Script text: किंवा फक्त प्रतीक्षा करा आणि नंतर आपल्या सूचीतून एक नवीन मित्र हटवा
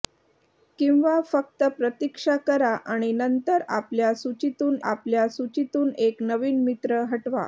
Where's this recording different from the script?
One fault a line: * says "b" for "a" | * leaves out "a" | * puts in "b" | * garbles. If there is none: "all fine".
* puts in "आपल्या सूचीतून"